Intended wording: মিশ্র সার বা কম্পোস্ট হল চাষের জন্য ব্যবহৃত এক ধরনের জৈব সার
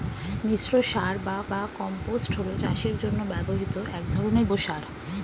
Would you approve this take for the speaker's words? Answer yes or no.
no